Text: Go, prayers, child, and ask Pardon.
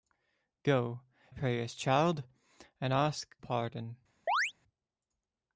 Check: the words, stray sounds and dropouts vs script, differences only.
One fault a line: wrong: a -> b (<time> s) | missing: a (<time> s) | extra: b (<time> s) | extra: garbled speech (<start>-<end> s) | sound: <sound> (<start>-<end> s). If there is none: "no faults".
sound: chirp (4.3-4.5 s)